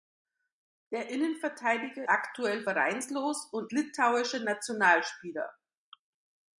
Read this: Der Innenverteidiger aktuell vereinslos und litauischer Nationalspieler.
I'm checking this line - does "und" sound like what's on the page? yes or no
yes